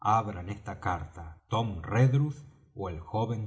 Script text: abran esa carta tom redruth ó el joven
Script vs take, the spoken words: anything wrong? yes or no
yes